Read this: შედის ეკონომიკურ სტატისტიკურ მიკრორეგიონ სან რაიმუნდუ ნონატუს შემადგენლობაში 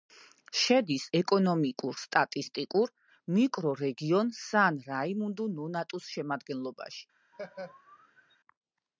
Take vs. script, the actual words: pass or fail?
pass